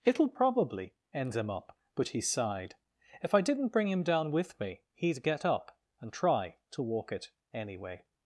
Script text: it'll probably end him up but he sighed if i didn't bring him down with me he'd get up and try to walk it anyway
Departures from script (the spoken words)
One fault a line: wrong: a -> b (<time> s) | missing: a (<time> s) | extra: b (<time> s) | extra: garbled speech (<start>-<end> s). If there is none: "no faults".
no faults